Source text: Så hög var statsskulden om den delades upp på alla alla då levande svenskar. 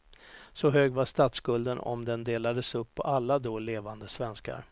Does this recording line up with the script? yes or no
no